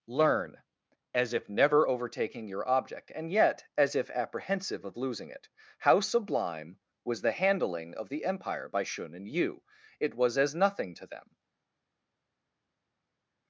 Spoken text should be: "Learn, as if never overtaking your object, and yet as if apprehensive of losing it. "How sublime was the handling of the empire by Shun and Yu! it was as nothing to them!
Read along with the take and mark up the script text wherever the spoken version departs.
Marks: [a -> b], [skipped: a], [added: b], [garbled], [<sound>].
"Learn, as if never overtaking your object, and yet as if apprehensive of losing it. "How sublime was the handling of the empire by Shun and Yu! it was as nothing to them!